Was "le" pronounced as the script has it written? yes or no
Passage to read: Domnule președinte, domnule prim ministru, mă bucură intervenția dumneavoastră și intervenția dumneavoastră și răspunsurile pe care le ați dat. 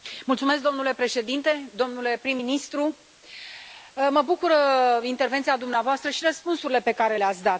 yes